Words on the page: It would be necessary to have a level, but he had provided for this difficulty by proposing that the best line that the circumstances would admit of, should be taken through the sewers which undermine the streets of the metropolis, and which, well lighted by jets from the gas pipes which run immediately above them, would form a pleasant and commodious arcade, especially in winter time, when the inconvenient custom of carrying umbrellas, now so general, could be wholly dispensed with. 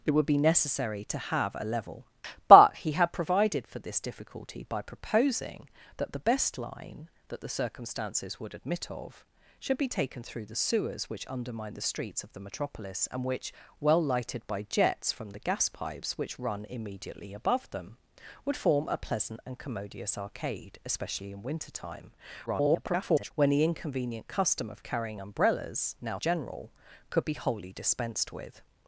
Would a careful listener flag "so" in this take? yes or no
yes